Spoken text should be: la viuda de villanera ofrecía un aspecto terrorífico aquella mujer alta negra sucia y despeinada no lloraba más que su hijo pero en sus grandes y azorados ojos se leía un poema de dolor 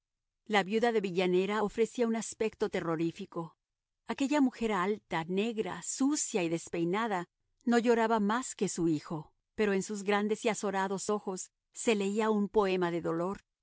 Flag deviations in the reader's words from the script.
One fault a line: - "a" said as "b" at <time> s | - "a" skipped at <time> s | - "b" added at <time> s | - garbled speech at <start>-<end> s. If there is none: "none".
none